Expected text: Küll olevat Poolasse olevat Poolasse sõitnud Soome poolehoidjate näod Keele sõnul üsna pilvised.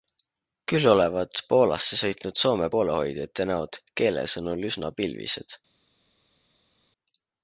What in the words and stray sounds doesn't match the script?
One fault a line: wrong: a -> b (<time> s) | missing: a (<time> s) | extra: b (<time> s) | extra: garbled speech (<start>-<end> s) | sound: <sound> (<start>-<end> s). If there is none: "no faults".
missing: olevat Poolasse (2.0 s)